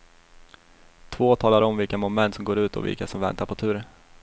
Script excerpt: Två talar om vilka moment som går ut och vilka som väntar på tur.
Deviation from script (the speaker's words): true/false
false